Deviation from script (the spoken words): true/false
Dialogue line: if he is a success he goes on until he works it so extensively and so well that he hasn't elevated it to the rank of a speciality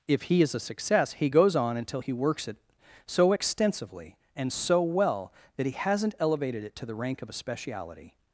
false